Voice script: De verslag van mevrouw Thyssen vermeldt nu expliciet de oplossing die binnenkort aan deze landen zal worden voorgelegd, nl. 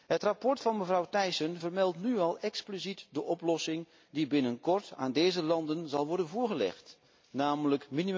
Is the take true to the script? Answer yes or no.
no